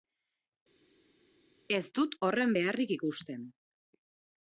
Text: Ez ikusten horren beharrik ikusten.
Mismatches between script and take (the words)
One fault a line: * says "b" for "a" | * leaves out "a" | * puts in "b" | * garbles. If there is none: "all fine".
* says "dut" for "ikusten"